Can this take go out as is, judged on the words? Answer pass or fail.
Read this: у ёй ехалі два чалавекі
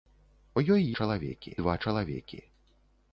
fail